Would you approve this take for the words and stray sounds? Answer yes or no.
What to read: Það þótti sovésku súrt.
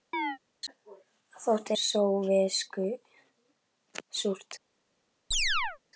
no